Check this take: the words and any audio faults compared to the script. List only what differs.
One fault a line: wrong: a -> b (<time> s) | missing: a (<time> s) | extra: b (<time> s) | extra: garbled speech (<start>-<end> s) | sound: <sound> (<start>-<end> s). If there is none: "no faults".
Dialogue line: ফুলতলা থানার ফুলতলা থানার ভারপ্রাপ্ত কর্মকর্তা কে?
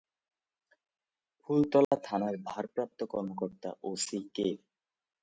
sound: dropout (1.8-1.9 s)
missing: ফুলতলা থানার (2.4 s)
extra: ওসি (3.8 s)